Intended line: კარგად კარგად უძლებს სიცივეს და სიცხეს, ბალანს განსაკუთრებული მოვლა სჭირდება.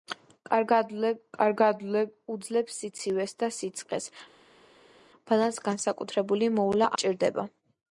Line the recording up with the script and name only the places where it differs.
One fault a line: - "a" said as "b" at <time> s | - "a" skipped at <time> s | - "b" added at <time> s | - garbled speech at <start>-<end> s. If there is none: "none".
none